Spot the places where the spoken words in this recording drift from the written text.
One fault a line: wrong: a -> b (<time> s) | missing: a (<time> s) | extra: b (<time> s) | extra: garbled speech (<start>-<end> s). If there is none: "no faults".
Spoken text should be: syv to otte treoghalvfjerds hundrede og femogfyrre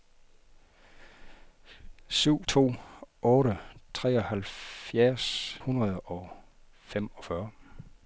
no faults